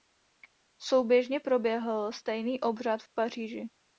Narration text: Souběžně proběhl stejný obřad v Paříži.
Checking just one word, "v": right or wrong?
right